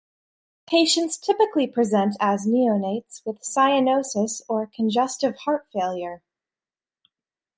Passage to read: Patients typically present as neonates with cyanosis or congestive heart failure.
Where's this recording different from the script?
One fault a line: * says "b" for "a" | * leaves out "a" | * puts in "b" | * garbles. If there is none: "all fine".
all fine